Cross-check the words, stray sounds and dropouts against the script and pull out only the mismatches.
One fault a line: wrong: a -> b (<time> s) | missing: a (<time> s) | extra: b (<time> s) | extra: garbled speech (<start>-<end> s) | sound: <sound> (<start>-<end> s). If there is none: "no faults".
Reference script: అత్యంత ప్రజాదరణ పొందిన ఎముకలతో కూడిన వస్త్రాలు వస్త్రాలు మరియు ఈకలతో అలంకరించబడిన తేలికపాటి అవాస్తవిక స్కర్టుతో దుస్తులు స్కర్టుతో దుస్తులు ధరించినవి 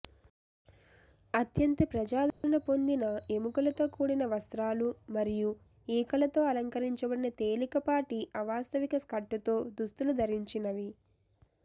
sound: dropout (2.3-2.4 s)
missing: వస్త్రాలు (4.9 s)
missing: స్కర్టుతో దుస్తులు (10.1 s)